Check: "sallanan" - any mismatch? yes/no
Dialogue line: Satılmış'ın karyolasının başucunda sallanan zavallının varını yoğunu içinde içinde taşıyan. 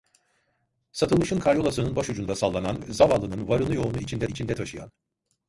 no